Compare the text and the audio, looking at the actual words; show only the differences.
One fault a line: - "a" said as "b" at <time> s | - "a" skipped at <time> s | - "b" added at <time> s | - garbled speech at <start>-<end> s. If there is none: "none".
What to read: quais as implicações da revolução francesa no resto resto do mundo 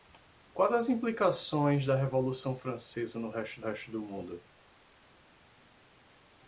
none